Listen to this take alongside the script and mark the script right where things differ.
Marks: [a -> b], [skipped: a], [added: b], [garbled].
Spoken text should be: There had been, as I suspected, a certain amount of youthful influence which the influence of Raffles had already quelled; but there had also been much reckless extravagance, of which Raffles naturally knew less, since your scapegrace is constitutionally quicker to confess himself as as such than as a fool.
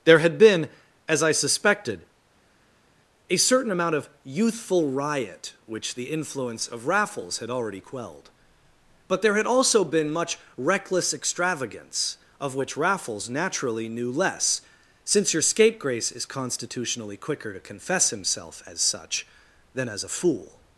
There had been, as I suspected, a certain amount of youthful [influence -> riot] which the influence of Raffles had already quelled; but there had also been much reckless extravagance, of which Raffles naturally knew less, since your scapegrace is constitutionally quicker to confess himself as [skipped: as] such than as a fool.